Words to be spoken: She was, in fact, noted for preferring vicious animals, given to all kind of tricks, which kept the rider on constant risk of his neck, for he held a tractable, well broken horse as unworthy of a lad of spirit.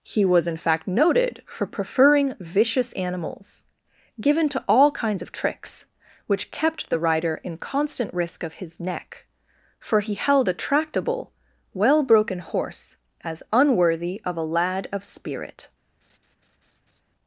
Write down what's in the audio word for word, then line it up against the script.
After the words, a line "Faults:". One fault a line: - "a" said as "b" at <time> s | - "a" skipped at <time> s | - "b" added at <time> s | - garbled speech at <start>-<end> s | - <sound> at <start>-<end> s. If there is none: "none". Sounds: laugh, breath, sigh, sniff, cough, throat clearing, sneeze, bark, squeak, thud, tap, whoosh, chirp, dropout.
He was, in fact, noted for preferring vicious animals, given to all kinds of tricks, which kept the rider in constant risk of his neck, for he held a tractable, well broken horse as unworthy of a lad of spirit.
Faults:
- "She" said as "He" at 0.0 s
- "kind" said as "kinds" at 4.9 s
- "on" said as "in" at 7.4 s
- laugh at 16.0-17.0 s